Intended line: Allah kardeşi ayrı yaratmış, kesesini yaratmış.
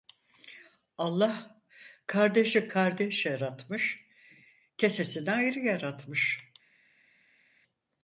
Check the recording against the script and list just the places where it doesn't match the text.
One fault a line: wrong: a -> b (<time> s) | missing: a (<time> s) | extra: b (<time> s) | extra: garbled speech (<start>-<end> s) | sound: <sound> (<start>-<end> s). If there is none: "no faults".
wrong: ayrı -> kardeş (2.7 s)
extra: ayrı (5.3 s)